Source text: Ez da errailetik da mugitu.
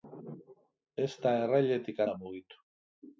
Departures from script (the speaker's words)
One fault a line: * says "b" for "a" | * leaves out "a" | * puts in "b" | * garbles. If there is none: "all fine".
all fine